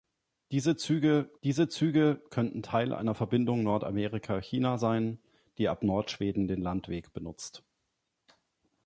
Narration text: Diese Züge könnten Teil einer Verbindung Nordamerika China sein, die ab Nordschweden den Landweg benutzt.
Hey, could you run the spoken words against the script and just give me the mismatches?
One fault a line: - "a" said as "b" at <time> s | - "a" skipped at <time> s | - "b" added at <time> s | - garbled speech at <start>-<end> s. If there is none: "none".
- "diese Züge" added at 1.4 s